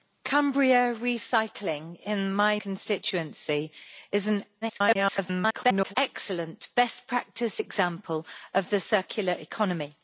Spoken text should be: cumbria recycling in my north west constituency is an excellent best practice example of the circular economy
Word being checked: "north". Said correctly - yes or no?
no